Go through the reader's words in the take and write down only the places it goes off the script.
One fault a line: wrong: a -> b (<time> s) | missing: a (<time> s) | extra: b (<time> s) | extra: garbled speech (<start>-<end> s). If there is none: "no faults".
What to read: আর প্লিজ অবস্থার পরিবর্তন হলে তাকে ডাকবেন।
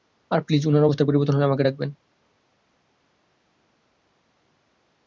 extra: উনার (0.7 s)
wrong: তাকে -> আমাকে (1.5 s)